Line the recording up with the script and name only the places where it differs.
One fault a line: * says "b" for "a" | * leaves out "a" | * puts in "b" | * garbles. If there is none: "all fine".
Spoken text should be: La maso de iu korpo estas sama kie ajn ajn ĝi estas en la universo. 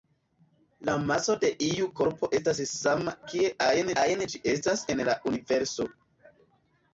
all fine